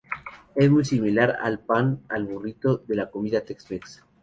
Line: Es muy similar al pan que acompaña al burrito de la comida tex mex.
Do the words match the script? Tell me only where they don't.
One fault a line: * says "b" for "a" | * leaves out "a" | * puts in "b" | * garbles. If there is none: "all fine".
* leaves out "que acompaña"